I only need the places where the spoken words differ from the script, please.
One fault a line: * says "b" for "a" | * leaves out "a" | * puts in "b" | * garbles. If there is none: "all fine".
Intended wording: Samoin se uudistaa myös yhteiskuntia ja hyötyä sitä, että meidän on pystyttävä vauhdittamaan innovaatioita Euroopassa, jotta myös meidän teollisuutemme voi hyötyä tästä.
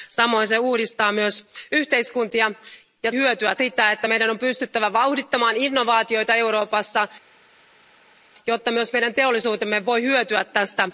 all fine